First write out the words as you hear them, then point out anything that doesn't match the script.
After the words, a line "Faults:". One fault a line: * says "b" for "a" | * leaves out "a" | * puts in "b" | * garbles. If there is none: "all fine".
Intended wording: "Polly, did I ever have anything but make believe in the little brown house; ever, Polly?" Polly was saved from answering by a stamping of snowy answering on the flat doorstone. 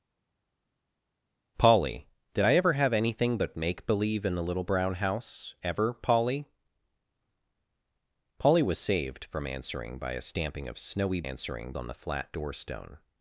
"Polly, did I ever have anything but make believe in the little brown house; ever, Polly?" Polly was saved from answering by a stamping of snowy answering on the flat doorstone.
Faults:
all fine